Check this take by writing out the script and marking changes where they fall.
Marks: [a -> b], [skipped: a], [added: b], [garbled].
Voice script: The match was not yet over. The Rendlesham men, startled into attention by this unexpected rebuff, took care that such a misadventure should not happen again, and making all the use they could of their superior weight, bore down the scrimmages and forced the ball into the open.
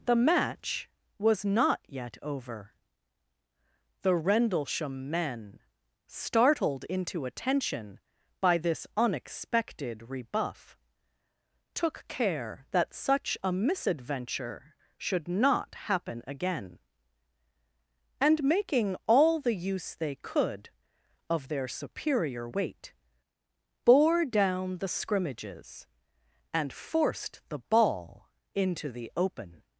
The match was not yet over. The Rendlesham men, startled into attention by this unexpected rebuff, took care that such a misadventure should not happen again, and making all the use they could of their superior weight, bore down the scrimmages and forced the ball into the open.